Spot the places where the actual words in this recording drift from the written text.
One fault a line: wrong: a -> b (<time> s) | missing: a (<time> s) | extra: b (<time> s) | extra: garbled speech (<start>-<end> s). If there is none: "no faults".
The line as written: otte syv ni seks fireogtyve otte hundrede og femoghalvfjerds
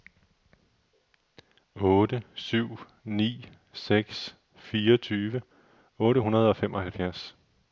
no faults